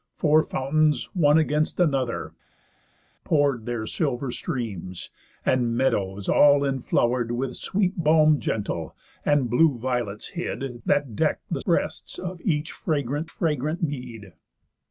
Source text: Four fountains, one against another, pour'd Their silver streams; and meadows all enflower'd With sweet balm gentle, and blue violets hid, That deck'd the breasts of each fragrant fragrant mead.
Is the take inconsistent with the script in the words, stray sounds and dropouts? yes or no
no